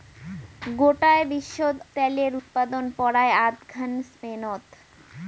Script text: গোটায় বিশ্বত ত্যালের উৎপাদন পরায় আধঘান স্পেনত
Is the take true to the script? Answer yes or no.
yes